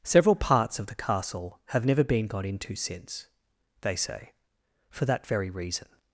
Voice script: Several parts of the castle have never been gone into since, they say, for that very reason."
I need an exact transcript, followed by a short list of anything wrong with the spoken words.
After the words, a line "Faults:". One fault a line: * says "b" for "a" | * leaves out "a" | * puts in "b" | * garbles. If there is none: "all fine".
Several parts of the castle have never been got into since, they say, for that very reason."
Faults:
* says "got" for "gone"